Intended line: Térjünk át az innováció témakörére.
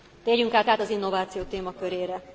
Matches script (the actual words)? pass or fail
fail